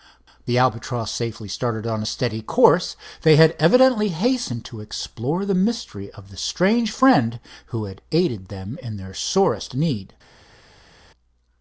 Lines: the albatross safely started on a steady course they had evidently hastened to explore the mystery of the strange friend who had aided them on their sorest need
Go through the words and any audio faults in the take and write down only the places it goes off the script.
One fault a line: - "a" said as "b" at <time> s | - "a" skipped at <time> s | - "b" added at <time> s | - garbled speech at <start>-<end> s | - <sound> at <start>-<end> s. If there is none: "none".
- "on" said as "in" at 8.8 s